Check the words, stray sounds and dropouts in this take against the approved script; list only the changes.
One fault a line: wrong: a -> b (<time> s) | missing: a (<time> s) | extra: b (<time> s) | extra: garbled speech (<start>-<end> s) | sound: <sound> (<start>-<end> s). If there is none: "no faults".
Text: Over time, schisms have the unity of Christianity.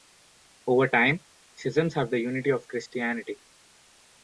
no faults